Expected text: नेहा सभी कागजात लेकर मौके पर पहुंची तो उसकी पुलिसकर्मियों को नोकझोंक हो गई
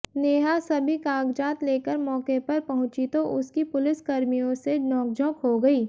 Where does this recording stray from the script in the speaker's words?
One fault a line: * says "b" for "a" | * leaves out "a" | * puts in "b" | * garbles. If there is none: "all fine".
* says "से" for "को"